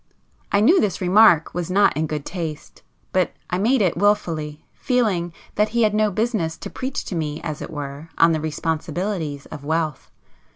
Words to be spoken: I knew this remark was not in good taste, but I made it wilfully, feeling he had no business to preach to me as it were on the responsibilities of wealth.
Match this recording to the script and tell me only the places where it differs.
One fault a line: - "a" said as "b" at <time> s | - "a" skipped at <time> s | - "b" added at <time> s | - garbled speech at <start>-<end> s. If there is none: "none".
- "that" added at 5.6 s